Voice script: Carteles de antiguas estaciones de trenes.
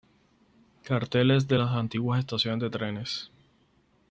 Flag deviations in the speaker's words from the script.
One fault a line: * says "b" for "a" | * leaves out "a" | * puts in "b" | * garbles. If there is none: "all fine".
* puts in "las"